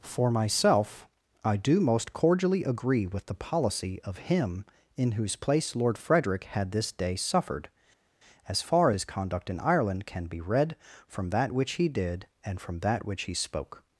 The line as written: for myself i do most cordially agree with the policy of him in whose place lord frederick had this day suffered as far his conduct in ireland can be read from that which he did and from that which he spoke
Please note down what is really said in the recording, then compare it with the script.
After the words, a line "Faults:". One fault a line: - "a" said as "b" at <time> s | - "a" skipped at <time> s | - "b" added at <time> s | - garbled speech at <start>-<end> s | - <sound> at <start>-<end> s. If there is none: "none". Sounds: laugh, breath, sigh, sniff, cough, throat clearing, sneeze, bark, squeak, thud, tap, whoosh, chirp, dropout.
for myself i do most cordially agree with the policy of him in whose place lord frederick had this day suffered as far his conduct in ireland can be read from that which he did and from that which he spoke
Faults:
none